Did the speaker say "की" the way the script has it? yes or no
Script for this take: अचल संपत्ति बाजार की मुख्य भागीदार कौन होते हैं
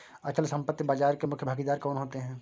no